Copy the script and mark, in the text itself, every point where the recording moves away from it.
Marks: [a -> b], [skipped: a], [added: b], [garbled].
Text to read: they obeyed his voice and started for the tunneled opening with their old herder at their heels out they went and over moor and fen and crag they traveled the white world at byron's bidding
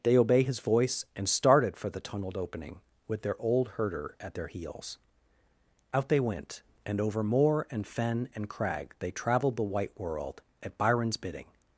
they [obeyed -> obey] his voice and started for the tunneled opening with their old herder at their heels out they went and over moor and fen and crag they traveled the white world at byron's bidding